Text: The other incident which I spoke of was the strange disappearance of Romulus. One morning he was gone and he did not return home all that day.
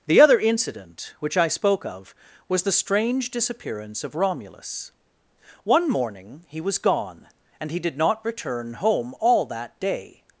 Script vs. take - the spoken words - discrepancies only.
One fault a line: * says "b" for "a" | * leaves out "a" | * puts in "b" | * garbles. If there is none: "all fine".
all fine